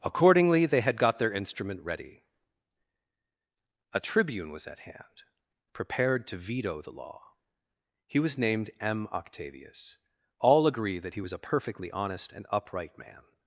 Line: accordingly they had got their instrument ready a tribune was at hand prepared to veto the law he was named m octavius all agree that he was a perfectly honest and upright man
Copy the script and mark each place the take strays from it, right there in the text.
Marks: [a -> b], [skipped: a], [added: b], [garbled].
accordingly they had got their instrument ready a tribune was at hand prepared to veto the law he was named m octavius all agree that he was a perfectly honest and upright man